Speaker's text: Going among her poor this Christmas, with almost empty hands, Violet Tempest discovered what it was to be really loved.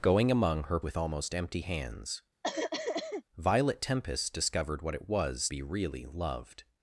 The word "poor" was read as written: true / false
false